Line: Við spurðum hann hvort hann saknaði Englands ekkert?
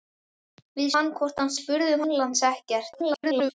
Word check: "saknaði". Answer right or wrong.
wrong